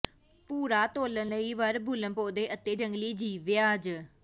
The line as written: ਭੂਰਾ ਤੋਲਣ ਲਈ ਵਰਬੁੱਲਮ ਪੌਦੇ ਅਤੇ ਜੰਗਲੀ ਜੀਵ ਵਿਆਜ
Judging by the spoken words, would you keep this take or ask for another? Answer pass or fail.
pass